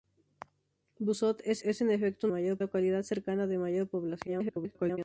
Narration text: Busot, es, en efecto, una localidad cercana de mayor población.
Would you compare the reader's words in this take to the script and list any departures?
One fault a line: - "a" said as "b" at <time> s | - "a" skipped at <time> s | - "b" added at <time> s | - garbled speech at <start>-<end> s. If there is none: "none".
- "es" added at 1.6 s
- "una" said as "mayor" at 2.3 s
- garbled speech at 4.3-5.0 s